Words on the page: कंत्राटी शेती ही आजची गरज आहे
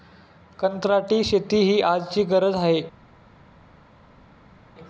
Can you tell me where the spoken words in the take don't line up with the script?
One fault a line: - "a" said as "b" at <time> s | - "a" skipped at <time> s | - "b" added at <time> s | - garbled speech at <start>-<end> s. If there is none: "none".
none